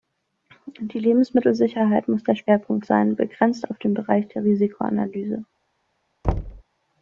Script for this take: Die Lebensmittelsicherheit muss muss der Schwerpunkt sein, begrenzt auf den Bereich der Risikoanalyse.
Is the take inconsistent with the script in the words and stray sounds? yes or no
yes